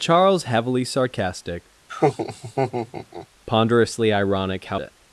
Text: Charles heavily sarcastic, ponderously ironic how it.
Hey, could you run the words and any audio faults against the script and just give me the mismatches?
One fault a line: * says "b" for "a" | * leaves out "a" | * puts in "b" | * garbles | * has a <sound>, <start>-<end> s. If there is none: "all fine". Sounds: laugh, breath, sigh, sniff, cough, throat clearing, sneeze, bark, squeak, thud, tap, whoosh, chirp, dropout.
* has a laugh, 1.9-3.3 s